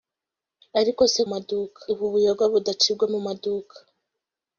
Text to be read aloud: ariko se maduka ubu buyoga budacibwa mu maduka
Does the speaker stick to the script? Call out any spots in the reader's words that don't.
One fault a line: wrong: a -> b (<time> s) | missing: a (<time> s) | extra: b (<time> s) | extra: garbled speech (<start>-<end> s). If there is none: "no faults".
no faults